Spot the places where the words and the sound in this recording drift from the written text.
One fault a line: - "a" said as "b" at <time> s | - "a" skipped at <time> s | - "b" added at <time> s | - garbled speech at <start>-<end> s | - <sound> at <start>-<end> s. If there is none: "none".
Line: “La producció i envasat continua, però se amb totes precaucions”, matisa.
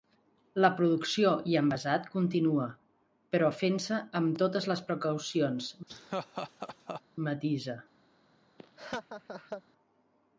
- "fent" added at 3.6 s
- "les" added at 4.7 s
- laugh at 5.9-7.0 s
- laugh at 8.6-9.6 s